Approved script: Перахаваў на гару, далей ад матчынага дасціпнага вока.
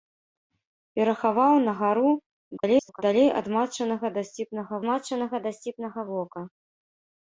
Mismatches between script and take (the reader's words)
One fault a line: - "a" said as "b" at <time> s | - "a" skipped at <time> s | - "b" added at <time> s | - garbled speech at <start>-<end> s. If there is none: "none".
- garbled speech at 2.6-3.0 s
- "матчынага дасціпнага" added at 4.9 s